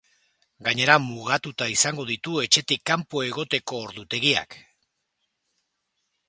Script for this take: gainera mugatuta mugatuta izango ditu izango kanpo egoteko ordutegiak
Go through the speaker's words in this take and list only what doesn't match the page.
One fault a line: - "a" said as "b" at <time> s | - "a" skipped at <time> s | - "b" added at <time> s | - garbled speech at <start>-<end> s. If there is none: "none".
- "mugatuta" skipped at 1.7 s
- "izango" said as "etxetik" at 2.5 s